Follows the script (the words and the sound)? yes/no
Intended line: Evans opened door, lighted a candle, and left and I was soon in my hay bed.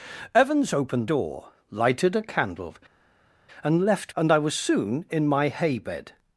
yes